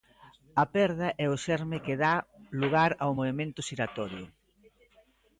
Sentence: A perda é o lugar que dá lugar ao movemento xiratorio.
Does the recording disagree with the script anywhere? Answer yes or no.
yes